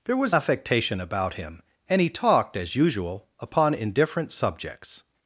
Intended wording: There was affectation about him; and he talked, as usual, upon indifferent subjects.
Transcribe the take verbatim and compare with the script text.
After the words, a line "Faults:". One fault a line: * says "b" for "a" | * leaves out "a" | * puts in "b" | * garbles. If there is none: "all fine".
There was affectation about him; and he talked, as usual, upon indifferent subjects.
Faults:
all fine